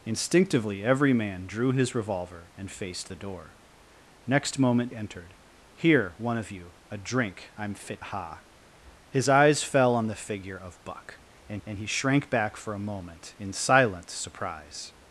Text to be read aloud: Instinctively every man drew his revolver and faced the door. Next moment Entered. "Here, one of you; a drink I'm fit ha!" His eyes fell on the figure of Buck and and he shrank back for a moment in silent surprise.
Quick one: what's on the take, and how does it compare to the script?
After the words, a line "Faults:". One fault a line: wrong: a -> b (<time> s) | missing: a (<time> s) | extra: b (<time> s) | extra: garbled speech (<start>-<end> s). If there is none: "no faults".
Instinctively every man drew his revolver and faced the door. Next moment Entered. "Here, one of you; a drink I'm fit ha!" His eyes fell on the figure of Buck and and he shrank back for a moment in silent surprise.
Faults:
no faults